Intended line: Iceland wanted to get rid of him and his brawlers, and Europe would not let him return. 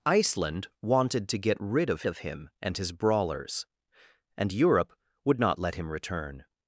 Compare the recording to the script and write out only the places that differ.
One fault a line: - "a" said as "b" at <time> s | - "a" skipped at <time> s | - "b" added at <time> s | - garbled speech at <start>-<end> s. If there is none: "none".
- "of" added at 2.1 s